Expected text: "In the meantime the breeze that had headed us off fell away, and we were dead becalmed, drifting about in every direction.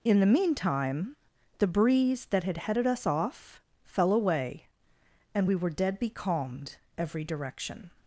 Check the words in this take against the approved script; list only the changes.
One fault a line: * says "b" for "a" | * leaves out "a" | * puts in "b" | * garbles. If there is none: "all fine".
* leaves out "drifting about in"